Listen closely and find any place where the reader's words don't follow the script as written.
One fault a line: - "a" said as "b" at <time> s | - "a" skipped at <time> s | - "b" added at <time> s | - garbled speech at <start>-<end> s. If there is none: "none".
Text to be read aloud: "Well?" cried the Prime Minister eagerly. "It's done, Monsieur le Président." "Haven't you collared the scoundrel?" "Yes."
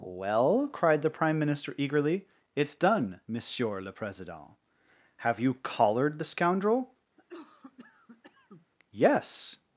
- "Haven't" said as "Have" at 5.2 s